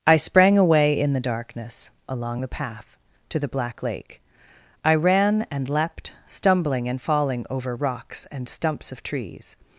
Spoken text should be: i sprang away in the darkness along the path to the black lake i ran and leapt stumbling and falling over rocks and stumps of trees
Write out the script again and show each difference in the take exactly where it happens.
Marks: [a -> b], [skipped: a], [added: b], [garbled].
i sprang away in the darkness along the path to the black lake i ran and leapt stumbling and falling over rocks and stumps of trees